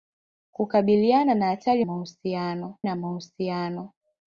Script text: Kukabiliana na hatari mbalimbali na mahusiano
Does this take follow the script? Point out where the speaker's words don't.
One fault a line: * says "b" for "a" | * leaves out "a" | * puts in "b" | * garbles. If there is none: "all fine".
* says "mahusiano" for "mbalimbali"